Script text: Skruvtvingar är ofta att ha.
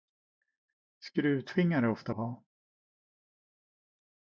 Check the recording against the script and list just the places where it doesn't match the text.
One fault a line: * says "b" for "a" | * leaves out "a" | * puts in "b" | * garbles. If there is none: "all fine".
all fine